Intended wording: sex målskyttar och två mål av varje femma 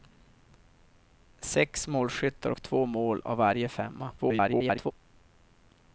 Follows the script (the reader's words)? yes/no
no